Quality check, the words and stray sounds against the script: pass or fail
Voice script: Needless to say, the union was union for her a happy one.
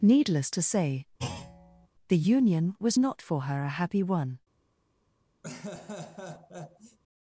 fail